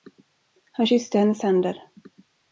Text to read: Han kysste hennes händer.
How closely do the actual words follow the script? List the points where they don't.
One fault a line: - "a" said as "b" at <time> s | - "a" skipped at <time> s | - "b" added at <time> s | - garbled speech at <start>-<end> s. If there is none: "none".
none